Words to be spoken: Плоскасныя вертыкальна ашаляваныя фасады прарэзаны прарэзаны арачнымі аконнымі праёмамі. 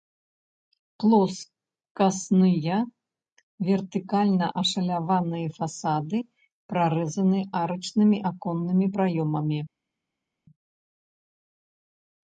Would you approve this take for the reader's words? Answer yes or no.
no